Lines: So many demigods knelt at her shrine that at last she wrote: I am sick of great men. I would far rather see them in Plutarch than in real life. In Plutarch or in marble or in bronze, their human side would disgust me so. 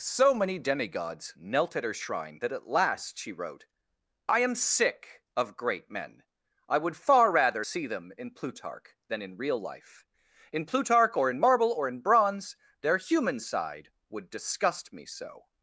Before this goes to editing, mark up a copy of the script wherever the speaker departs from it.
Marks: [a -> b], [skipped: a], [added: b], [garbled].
So many demigods knelt at her shrine that at last she wrote: I am sick of great men. I would far rather see them in Plutarch than in real life. In Plutarch or in marble or in bronze, their human side would disgust me so.